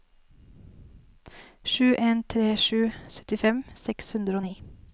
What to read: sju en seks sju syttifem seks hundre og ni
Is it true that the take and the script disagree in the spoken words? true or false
true